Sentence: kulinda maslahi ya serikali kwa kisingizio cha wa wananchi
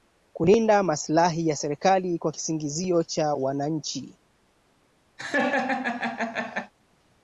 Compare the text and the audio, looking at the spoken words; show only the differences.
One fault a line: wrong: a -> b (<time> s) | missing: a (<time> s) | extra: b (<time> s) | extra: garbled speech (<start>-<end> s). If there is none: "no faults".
missing: wa (3.3 s)